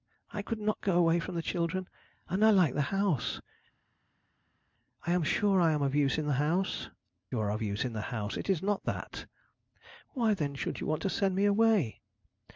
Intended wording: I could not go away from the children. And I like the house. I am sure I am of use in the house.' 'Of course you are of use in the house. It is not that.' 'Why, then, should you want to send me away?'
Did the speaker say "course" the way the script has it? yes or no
no